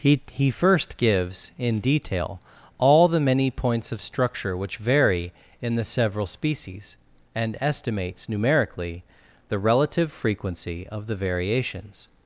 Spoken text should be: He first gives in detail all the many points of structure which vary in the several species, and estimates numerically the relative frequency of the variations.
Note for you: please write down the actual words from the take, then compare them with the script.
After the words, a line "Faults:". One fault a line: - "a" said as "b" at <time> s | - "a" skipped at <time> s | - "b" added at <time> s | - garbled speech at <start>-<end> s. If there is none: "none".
He he first gives in detail all the many points of structure which vary in the several species, and estimates numerically the relative frequency of the variations.
Faults:
- "he" added at 0.3 s